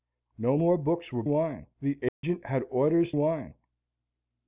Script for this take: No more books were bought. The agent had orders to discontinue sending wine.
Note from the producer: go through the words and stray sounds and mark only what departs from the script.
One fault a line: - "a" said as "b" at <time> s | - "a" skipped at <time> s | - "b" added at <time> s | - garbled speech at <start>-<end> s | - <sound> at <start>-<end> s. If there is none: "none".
- "bought" said as "wine" at 1.3 s
- dropout at 2.1-2.2 s
- "to discontinue sending" skipped at 3.1 s